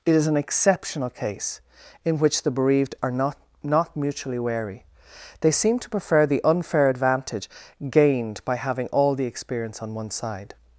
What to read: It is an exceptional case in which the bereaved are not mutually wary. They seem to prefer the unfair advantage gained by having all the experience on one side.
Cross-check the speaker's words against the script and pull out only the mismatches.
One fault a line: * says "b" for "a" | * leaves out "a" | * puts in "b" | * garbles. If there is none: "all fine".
* puts in "not"